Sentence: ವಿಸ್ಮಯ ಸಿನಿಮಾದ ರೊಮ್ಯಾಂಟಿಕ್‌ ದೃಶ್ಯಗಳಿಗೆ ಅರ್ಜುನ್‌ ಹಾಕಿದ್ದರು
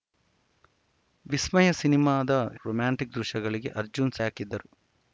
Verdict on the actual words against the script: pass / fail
pass